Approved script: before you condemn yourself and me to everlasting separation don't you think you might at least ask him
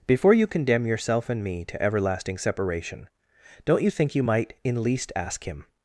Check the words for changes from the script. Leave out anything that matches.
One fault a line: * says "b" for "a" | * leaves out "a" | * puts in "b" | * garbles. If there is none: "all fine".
* says "in" for "at"